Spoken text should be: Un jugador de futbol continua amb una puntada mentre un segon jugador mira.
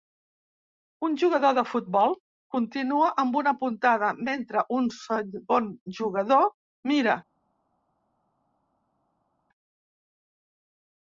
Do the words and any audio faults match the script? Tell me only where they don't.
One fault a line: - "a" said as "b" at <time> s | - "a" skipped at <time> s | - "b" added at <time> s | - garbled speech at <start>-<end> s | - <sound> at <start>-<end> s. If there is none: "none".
none